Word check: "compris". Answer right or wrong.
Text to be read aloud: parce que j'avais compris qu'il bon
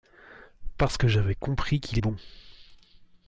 right